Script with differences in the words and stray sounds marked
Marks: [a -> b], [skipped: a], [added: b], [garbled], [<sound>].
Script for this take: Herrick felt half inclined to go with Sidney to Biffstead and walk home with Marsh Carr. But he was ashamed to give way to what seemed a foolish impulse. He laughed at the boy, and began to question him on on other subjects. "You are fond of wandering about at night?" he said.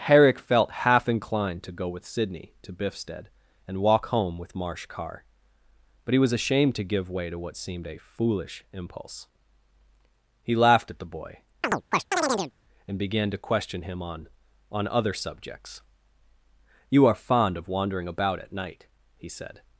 Herrick felt half inclined to go with Sidney to Biffstead and walk home with Marsh Carr. But he was ashamed to give way to what seemed a foolish impulse. He laughed at the boy, [chirp] and began to question him on on other subjects. "You are fond of wandering about at night?" he said.